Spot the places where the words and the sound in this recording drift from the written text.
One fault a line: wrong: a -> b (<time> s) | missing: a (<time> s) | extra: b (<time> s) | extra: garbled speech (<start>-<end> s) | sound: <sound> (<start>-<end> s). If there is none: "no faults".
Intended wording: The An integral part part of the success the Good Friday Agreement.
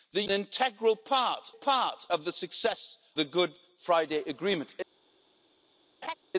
sound: laugh (6.0-6.2 s)